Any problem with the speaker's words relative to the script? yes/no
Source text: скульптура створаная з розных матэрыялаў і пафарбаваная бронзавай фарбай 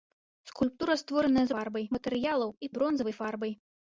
yes